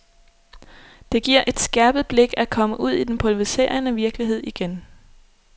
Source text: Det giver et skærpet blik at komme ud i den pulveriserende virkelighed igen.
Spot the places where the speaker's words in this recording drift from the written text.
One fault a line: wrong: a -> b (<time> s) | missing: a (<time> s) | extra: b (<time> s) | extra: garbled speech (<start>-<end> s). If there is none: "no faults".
no faults